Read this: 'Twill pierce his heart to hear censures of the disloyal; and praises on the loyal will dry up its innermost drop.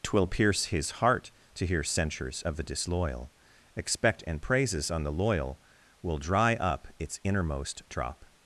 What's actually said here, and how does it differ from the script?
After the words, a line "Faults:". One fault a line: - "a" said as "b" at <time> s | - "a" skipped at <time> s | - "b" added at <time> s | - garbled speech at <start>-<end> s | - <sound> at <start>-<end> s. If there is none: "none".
'Twill pierce his heart to hear censures of the disloyal; expect and praises on the loyal will dry up its innermost drop.
Faults:
- "expect" added at 3.8 s